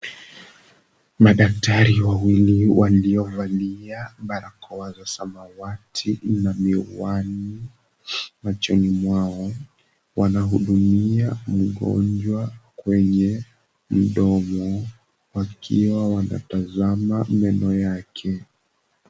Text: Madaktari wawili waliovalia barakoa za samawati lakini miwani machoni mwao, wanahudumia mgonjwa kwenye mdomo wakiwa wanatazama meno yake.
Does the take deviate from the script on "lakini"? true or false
true